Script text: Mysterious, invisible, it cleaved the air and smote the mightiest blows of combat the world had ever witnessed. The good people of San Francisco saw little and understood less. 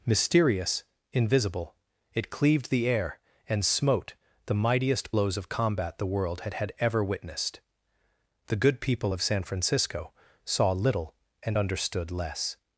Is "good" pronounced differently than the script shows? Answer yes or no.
no